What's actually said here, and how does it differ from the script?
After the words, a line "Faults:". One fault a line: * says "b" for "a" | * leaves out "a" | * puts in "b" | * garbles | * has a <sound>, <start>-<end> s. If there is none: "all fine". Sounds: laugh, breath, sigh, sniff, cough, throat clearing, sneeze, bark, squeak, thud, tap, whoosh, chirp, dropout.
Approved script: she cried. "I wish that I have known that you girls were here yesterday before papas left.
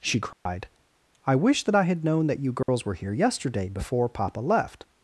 she cried. "I wish that I had known that you girls were here yesterday before papa left.
Faults:
* has a dropout, 0.3-0.5 s
* says "had" for "have"
* has a dropout, 2.6-2.7 s
* says "papa" for "papas"